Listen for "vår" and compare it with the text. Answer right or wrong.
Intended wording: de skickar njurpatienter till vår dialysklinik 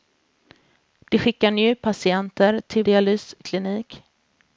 wrong